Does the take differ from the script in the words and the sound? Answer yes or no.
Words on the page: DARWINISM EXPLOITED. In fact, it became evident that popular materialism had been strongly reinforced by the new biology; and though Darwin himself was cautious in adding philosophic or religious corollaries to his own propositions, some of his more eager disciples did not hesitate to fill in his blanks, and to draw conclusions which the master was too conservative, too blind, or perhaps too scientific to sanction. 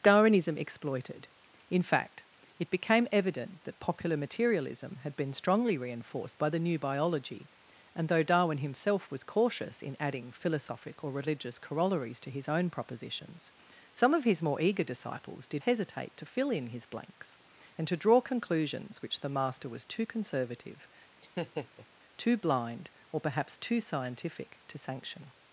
yes